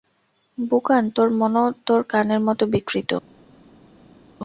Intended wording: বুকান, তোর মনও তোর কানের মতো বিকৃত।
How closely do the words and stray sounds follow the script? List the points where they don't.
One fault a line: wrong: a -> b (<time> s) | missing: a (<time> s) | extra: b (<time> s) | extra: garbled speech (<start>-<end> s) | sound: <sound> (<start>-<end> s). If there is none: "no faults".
no faults